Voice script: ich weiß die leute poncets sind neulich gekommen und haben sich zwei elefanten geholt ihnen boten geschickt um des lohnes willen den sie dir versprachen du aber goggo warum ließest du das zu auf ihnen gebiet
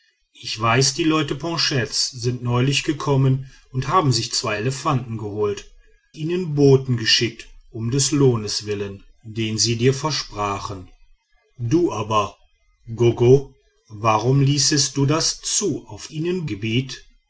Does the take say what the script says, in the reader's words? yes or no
yes